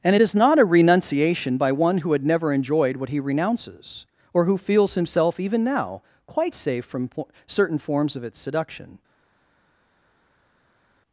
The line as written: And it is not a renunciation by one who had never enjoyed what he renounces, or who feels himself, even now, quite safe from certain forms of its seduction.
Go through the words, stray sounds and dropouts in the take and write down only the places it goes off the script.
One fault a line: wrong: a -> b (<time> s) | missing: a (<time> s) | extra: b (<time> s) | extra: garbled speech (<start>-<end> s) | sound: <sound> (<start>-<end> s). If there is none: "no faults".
extra: po (7.1 s)